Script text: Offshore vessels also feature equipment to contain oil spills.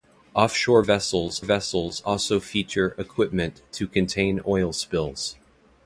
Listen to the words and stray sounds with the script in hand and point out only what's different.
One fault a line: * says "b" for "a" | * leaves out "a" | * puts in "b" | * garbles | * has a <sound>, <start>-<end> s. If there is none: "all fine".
* puts in "vessels"